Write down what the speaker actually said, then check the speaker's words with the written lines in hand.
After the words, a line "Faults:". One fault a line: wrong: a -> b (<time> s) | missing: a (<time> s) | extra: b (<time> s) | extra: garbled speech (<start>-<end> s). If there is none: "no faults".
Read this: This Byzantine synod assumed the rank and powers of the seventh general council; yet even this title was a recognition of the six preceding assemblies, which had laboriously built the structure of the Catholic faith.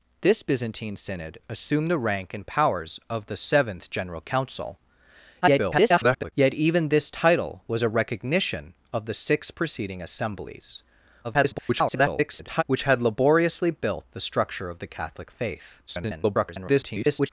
This Byzantine synod assumed the rank and powers of the seventh general council; [garbled] yet even this title was a recognition of the six preceding assemblies, [garbled] which had laboriously built the structure of the Catholic faith. [garbled]
Faults:
extra: garbled speech (5.4-6.3 s)
extra: garbled speech (11.2-12.6 s)
extra: garbled speech (15.9-17.3 s)